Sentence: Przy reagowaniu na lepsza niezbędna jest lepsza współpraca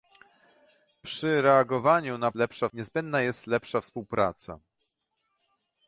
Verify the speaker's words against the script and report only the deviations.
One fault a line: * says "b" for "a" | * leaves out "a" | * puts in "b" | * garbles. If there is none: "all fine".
all fine